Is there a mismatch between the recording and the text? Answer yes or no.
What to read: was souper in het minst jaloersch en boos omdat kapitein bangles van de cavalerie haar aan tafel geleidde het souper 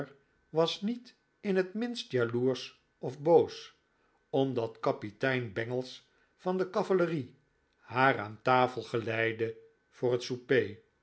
yes